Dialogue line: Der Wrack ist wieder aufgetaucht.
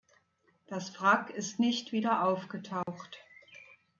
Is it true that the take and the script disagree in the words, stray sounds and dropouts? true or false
true